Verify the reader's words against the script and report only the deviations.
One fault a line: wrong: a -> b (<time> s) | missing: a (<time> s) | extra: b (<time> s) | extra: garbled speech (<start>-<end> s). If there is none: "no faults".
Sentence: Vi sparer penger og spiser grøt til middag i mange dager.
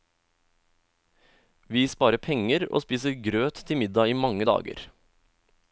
no faults